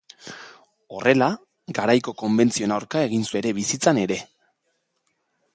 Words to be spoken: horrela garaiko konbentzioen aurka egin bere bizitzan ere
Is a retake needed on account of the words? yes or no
no